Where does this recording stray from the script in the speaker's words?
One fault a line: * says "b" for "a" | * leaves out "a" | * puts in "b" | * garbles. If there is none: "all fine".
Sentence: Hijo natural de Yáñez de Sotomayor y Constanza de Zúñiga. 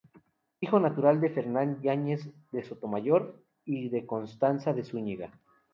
* puts in "Fernán"
* puts in "de"